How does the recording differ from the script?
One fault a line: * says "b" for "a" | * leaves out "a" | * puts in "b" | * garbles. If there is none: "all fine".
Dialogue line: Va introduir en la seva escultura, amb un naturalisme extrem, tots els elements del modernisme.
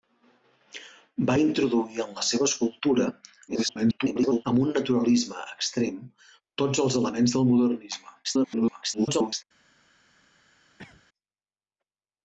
* garbles
* garbles